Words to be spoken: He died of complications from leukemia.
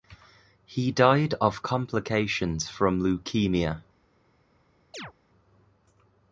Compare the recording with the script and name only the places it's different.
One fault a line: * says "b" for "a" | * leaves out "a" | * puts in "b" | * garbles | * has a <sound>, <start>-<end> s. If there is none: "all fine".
* has a chirp, 4.9-5.1 s